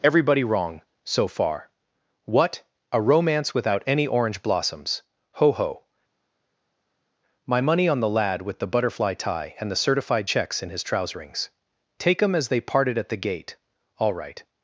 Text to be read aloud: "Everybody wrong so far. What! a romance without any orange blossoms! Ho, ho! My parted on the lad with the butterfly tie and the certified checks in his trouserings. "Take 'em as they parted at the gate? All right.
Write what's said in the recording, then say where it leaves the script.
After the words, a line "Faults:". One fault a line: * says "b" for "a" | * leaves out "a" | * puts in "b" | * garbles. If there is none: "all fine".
"Everybody wrong so far. What! a romance without any orange blossoms! Ho, ho! My money on the lad with the butterfly tie and the certified checks in his trouserings. "Take 'em as they parted at the gate? All right.
Faults:
* says "money" for "parted"